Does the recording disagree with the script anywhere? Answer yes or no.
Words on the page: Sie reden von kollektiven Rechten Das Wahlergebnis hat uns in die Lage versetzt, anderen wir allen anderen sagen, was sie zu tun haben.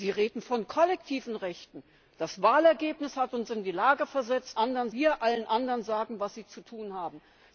no